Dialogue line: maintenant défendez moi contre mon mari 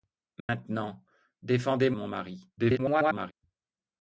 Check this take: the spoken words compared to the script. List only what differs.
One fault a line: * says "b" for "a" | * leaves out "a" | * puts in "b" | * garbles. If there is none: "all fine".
* leaves out "moi contre"
* garbles